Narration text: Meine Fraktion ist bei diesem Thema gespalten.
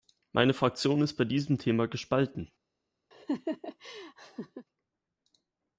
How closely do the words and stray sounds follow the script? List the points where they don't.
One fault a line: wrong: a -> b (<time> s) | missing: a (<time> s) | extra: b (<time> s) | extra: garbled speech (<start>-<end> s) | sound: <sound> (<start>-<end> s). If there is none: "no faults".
sound: laugh (3.1-4.7 s)